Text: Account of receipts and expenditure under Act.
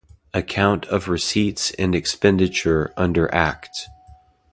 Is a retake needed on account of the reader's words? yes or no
no